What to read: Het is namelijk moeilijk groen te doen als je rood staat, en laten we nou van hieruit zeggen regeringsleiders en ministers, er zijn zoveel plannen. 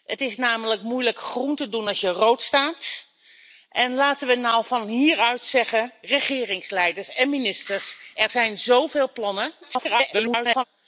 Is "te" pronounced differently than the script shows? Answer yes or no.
no